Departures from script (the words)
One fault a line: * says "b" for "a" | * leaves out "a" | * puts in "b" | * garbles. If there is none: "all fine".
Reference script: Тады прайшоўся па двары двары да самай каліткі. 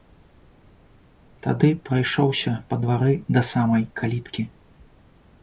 * leaves out "двары"